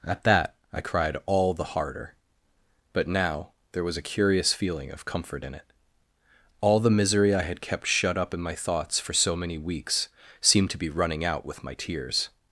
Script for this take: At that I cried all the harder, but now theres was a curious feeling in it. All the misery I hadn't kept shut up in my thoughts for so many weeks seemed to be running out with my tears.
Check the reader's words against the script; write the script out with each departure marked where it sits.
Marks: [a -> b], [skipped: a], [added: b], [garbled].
At that I cried all the harder, but now [theres -> there] was a curious feeling [added: of comfort] in it. All the misery I [hadn't -> had] kept shut up in my thoughts for so many weeks seemed to be running out with my tears.